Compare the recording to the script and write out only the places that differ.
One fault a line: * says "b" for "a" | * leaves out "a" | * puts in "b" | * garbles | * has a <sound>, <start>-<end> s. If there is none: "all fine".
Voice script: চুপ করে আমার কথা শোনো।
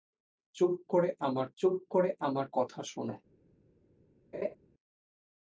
* puts in "চুপ করে আমার"
* has a laugh, 4.3-4.6 s